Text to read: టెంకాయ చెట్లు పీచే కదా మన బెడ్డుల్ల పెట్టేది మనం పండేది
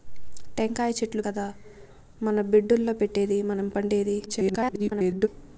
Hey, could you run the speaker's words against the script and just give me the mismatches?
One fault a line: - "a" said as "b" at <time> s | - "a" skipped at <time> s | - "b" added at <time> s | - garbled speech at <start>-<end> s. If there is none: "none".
- "పీచే" skipped at 1.2 s
- garbled speech at 4.3-5.3 s